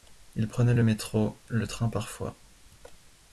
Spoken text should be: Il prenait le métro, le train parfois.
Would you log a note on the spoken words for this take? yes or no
no